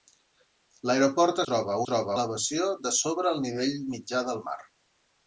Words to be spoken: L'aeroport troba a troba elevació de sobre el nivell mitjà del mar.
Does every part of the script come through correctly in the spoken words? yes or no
yes